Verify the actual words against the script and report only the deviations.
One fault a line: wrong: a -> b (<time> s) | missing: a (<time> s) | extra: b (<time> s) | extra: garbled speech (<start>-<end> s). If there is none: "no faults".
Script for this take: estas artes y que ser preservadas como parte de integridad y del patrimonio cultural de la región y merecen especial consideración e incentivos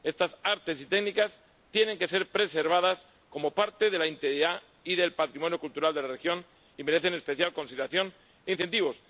extra: técnicas tienen (0.9 s)
extra: la (4.0 s)